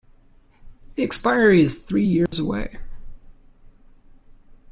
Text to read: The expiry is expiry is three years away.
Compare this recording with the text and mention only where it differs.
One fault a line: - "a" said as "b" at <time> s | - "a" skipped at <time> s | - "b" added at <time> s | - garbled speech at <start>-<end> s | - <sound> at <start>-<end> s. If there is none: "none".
- "expiry is" skipped at 1.8 s
- dropout at 2.3-2.3 s